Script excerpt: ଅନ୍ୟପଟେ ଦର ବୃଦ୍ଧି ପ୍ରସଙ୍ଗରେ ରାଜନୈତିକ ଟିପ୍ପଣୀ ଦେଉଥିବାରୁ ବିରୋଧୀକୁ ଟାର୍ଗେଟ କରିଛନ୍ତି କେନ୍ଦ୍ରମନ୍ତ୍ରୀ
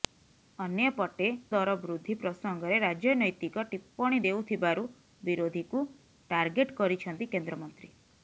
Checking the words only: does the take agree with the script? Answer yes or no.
yes